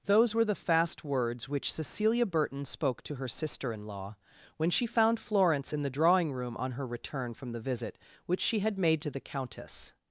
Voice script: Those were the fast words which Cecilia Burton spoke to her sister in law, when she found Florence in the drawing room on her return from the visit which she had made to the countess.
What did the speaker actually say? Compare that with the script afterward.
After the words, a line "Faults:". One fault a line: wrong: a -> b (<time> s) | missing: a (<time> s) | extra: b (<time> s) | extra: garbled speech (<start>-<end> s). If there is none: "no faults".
Those were the fast words which Cecilia Burton spoke to her sister in law, when she found Florence in the drawing room on her return from the visit which she had made to the countess.
Faults:
no faults